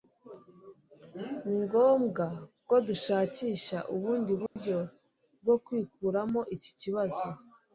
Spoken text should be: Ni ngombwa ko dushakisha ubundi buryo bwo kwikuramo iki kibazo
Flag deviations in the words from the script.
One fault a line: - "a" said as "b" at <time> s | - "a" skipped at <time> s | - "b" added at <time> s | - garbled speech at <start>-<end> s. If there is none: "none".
none